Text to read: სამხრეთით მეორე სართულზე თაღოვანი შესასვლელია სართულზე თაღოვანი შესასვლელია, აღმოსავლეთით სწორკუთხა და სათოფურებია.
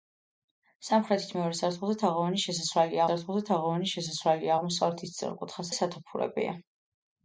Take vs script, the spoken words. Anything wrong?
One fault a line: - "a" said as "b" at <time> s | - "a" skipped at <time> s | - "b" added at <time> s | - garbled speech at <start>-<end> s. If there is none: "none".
none